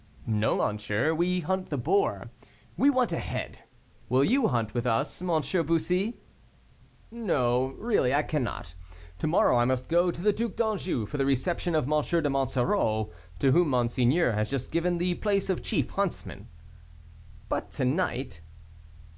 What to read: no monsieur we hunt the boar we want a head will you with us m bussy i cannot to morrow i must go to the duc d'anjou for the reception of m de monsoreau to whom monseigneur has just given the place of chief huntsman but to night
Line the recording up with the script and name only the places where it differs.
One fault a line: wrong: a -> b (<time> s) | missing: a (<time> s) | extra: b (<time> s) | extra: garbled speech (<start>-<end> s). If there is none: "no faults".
extra: hunt (4.5 s)
extra: no really (7.1 s)